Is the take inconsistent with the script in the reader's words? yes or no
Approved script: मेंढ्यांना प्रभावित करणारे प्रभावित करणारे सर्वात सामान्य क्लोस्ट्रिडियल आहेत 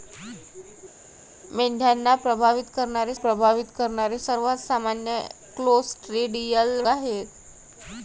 no